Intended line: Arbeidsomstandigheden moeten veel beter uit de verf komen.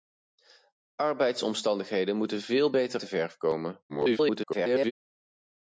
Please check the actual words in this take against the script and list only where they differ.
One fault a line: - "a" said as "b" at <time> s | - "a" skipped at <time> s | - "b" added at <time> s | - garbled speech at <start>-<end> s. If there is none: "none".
- "uit" skipped at 3.0 s
- garbled speech at 3.9-4.9 s